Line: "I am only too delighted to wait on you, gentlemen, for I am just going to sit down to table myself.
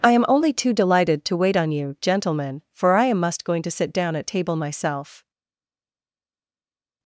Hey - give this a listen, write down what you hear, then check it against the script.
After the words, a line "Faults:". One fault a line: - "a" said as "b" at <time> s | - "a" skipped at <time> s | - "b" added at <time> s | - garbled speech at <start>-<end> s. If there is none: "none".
"I am only too delighted to wait on you, gentlemen, for I am must going to sit down at table myself.
Faults:
- "just" said as "must" at 3.2 s
- "to" said as "at" at 4.1 s